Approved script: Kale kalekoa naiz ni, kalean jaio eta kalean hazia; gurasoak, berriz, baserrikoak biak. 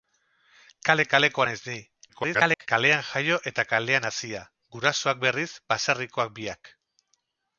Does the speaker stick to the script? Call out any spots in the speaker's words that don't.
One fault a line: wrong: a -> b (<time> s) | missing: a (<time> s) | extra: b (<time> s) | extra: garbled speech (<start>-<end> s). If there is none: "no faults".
extra: garbled speech (2.1-2.7 s)